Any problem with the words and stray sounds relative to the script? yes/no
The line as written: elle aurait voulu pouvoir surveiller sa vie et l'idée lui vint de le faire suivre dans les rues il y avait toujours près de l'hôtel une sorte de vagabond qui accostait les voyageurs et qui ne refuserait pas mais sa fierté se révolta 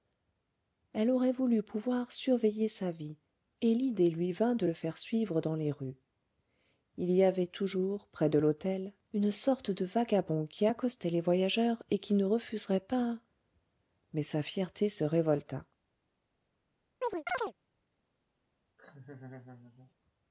yes